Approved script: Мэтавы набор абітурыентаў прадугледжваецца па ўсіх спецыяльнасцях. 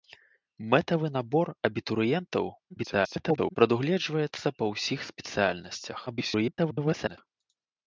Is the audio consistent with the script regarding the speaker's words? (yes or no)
no